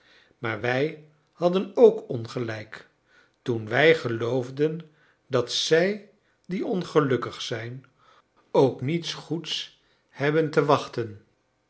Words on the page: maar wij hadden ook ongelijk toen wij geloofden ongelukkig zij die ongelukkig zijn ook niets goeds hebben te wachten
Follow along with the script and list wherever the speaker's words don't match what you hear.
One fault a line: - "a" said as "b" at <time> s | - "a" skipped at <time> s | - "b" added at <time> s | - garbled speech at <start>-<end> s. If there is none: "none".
- "ongelukkig" said as "dat" at 5.3 s